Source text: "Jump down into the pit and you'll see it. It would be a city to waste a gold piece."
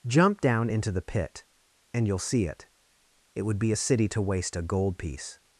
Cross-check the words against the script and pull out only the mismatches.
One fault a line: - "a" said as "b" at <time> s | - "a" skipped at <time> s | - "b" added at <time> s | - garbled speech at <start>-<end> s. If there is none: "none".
none